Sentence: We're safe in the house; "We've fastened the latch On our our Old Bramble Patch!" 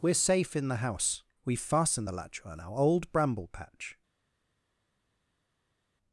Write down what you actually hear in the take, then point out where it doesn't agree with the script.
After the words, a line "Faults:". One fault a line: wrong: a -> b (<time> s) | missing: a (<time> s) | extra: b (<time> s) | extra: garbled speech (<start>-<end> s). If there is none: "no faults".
We're safe in the house; "We've fastened the latch On our Old Bramble Patch!"
Faults:
missing: our (2.8 s)